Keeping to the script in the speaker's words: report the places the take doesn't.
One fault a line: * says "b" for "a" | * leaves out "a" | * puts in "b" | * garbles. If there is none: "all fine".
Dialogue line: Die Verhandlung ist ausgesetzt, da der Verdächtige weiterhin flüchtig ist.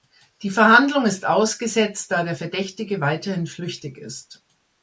all fine